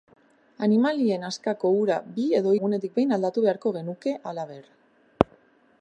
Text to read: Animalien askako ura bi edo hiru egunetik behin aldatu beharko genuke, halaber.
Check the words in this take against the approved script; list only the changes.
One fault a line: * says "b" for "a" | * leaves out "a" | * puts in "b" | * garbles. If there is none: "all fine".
* leaves out "hiru"